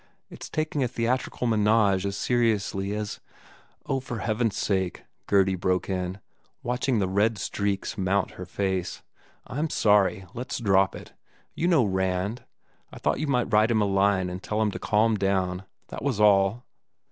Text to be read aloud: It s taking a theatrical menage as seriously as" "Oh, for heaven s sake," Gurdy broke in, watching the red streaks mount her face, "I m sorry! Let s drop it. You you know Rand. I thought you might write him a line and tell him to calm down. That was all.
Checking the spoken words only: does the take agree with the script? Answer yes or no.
no